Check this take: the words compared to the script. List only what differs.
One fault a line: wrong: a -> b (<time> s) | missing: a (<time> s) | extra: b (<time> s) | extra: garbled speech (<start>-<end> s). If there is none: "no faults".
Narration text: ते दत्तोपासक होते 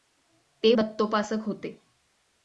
no faults